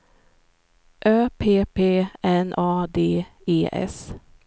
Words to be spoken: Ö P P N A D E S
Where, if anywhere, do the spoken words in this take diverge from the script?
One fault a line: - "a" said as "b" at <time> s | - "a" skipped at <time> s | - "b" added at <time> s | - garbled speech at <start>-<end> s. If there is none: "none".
none